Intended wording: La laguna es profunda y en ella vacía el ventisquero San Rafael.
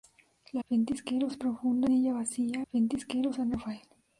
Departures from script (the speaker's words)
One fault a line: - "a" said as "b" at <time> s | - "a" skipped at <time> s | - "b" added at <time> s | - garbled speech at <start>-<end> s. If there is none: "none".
- "laguna" said as "ventisquero" at 0.7 s
- "y" skipped at 1.9 s
- "el" skipped at 2.6 s